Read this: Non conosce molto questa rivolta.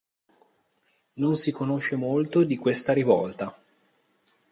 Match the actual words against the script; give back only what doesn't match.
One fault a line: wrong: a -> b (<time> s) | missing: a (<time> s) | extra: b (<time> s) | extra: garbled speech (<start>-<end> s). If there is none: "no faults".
extra: si (1.4 s)
extra: di (2.4 s)